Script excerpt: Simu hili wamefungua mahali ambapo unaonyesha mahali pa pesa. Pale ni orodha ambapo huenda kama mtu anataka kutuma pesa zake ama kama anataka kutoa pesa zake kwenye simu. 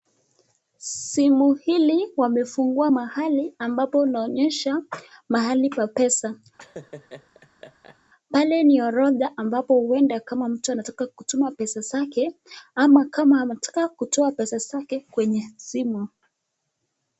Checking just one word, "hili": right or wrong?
right